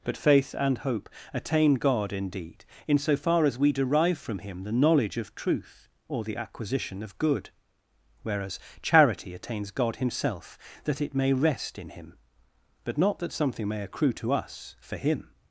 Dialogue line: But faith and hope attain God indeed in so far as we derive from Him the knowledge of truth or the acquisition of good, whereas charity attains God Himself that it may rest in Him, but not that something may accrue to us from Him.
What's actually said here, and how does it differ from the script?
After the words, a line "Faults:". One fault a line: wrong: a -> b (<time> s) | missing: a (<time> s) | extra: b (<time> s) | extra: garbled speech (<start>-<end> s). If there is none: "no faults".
But faith and hope attain God indeed in so far as we derive from Him the knowledge of truth or the acquisition of good, whereas charity attains God Himself that it may rest in Him, but not that something may accrue to us for Him.
Faults:
wrong: from -> for (14.8 s)